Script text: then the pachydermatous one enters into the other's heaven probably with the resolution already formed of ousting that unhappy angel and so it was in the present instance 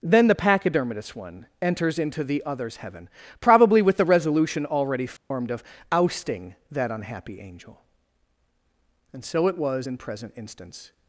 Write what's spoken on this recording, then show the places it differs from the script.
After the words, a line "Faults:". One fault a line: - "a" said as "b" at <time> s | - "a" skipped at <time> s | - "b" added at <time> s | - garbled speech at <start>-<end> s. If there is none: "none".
then the pachydermatous one enters into the other's heaven probably with the resolution already formed of ousting that unhappy angel and so it was in present instance
Faults:
- "the" skipped at 10.0 s